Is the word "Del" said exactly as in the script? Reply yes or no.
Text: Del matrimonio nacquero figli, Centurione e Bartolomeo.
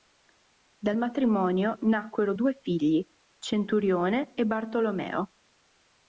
no